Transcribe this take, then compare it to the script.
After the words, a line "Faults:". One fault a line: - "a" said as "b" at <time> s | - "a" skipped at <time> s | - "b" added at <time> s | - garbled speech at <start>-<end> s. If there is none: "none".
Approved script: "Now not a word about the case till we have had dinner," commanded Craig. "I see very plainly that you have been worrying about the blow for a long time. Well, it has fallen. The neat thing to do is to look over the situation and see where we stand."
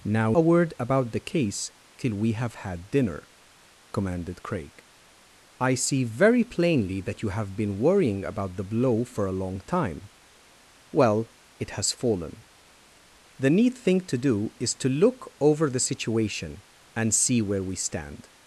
"Now a word about the case till we have had dinner," commanded Craig. "I see very plainly that you have been worrying about the blow for a long time. Well, it has fallen. The neat thing to do is to look over the situation and see where we stand."
Faults:
- "not" skipped at 0.3 s